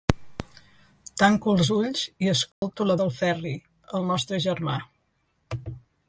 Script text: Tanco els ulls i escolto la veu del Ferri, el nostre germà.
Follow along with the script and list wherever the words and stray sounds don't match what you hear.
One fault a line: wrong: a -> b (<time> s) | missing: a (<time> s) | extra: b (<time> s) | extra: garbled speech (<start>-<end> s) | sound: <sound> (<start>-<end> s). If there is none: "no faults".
sound: dropout (2.5-2.6 s)
missing: veu (3.0 s)